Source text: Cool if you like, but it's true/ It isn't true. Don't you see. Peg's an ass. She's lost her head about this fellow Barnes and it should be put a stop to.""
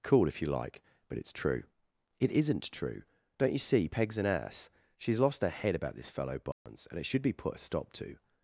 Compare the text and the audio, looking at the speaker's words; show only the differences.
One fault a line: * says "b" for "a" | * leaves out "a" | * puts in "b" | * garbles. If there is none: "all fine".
all fine